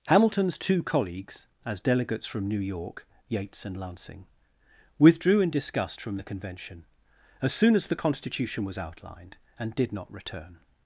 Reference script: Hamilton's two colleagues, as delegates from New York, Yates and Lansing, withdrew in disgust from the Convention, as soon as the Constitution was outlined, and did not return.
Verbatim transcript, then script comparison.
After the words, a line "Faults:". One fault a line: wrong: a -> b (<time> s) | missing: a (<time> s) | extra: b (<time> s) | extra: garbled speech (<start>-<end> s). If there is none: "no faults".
Hamilton's two colleagues, as delegates from New York, Yates and Lansing, withdrew in disgust from the Convention, as soon as the Constitution was outlined, and did not return.
Faults:
no faults